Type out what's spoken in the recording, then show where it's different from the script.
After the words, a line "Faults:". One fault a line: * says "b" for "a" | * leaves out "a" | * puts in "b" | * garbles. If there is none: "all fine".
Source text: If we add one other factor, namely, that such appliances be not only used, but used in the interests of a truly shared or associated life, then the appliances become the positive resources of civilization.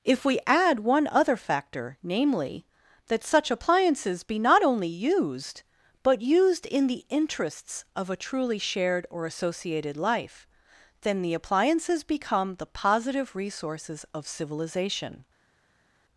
If we add one other factor, namely, that such appliances be not only used, but used in the interests of a truly shared or associated life, then the appliances become the positive resources of civilization.
Faults:
all fine